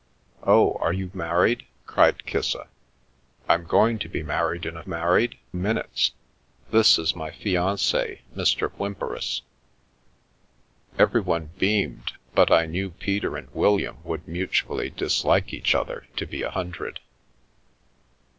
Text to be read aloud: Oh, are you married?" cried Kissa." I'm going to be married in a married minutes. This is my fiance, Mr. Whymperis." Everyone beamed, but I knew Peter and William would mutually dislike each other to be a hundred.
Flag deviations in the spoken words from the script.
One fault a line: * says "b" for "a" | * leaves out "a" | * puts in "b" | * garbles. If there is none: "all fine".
all fine